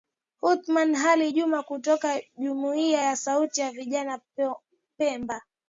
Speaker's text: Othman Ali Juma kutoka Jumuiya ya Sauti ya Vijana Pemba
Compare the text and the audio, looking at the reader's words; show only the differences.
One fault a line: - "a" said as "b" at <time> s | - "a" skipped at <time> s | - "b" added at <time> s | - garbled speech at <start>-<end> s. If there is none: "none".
none